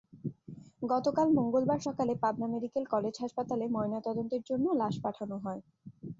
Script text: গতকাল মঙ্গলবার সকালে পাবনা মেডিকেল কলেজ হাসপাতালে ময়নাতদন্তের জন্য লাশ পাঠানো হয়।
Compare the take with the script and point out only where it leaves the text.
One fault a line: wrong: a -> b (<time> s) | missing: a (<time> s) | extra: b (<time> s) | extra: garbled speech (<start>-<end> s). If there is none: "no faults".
no faults